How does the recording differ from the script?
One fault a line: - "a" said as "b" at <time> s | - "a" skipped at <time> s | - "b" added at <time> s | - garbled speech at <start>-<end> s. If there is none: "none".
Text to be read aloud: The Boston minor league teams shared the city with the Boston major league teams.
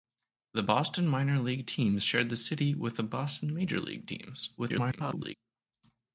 - garbled speech at 4.6-5.3 s